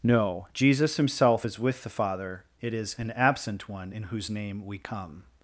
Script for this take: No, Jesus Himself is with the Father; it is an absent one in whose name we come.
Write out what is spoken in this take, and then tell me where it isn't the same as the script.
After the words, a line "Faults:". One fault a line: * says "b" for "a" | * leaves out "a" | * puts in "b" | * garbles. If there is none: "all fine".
No, Jesus Himself is with the Father; it is an absent one in whose name we come.
Faults:
all fine